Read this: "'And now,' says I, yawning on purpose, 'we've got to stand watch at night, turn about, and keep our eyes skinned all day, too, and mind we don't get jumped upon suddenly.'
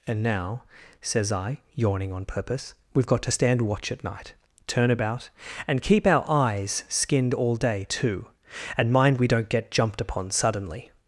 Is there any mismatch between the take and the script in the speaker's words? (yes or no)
no